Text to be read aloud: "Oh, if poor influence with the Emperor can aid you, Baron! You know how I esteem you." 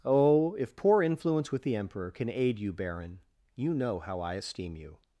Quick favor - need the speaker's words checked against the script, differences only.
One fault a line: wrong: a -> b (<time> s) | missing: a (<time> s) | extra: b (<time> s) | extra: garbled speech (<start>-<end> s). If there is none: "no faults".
no faults